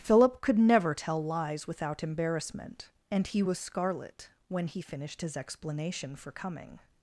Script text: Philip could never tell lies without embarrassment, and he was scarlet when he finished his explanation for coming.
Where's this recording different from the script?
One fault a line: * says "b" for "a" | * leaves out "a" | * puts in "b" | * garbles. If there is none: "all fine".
all fine